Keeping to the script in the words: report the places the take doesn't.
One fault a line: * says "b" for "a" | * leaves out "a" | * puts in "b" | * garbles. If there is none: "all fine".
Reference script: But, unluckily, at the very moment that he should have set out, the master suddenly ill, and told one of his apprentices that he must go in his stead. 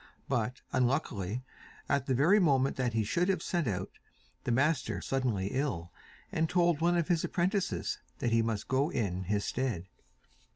all fine